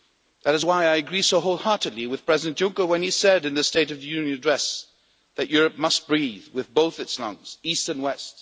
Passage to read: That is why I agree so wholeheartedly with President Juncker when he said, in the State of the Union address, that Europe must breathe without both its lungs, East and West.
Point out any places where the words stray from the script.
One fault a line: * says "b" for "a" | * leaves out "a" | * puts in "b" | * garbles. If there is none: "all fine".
* says "with" for "without"